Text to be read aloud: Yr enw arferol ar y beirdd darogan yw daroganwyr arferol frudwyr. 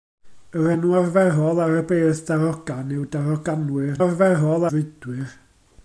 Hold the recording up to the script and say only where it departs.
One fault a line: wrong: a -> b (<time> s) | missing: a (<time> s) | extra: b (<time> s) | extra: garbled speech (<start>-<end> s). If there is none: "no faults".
no faults